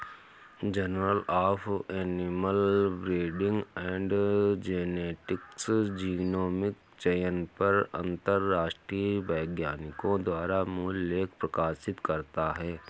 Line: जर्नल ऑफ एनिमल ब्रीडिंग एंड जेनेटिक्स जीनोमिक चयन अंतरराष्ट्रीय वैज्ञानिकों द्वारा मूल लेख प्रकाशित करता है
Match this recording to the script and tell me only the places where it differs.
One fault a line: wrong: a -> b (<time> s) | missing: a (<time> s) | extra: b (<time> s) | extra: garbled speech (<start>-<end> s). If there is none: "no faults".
extra: पर (7.6 s)